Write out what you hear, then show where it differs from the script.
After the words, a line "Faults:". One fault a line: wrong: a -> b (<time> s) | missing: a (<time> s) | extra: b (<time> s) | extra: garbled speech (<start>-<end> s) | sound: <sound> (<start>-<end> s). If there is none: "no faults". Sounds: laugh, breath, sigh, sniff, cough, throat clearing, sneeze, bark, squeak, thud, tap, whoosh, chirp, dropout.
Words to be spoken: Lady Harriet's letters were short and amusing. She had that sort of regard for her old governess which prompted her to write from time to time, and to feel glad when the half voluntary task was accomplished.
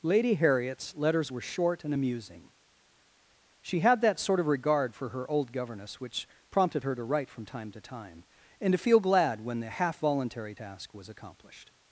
Lady Harriet's letters were short and amusing. She had that sort of regard for her old governess which prompted her to write from time to time, and to feel glad when the half voluntary task was accomplished.
Faults:
no faults